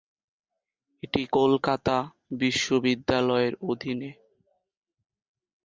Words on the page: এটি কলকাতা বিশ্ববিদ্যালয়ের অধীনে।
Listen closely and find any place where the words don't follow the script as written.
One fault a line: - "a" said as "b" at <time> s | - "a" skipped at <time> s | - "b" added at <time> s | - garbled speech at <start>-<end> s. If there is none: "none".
none